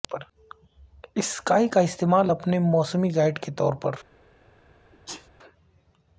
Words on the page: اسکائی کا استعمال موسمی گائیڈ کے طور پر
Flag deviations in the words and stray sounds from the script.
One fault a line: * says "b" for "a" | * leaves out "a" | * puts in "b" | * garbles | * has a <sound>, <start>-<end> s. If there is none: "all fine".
* puts in "اپنے"
* has a sneeze, 4.9-5.3 s